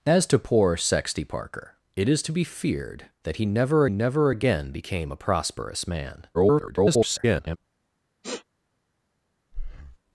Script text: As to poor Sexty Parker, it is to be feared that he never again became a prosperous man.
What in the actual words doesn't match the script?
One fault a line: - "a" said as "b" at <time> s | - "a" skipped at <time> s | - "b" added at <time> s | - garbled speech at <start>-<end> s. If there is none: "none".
- "never" added at 3.9 s
- garbled speech at 6.3-7.6 s